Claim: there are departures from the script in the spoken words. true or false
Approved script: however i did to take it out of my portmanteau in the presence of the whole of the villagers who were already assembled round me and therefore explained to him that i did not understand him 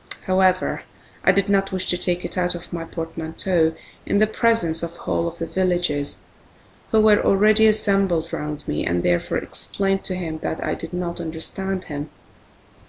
true